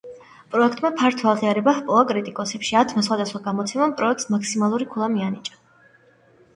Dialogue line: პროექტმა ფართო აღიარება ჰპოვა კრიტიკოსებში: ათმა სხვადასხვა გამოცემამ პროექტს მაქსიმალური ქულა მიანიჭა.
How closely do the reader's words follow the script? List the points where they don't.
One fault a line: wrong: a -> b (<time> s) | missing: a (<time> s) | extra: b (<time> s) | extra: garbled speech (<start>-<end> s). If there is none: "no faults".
no faults